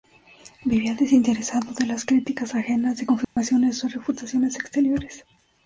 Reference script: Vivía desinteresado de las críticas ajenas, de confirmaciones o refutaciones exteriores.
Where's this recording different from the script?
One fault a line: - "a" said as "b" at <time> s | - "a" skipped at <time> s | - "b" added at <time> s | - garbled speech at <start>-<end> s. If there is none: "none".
none